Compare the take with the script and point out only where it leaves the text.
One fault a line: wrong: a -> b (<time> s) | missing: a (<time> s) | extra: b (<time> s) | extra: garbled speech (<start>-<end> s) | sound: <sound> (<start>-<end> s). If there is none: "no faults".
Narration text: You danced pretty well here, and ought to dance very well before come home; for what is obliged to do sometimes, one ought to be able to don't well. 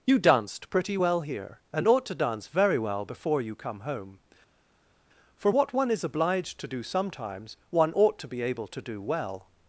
extra: you (3.4 s)
extra: one (5.7 s)
wrong: don't -> do (8.8 s)